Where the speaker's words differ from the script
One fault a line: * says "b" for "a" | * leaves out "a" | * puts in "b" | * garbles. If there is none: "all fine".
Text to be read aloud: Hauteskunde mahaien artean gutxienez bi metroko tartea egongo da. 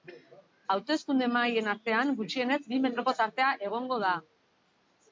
all fine